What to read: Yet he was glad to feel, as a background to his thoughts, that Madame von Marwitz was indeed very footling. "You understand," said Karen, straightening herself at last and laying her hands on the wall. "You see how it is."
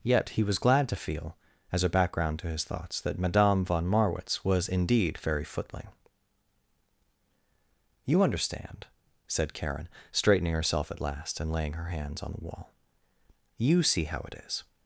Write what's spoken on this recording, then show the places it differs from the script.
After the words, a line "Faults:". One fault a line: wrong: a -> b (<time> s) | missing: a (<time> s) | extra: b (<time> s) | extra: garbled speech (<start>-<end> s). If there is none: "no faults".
Yet he was glad to feel, as a background to his thoughts, that Madame von Marwitz was indeed very footling. "You understand," said Karen, straightening herself at last and laying her hands on the wall. "You see how it is."
Faults:
no faults